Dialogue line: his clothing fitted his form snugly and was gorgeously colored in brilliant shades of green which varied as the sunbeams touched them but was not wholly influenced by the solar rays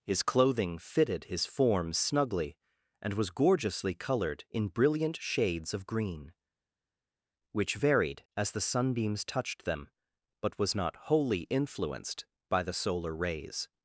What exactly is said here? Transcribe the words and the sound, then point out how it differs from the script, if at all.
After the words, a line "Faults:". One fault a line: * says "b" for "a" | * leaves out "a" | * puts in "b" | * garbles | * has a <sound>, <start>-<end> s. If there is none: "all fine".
his clothing fitted his form snugly and was gorgeously colored in brilliant shades of green which varied as the sunbeams touched them but was not wholly influenced by the solar rays
Faults:
all fine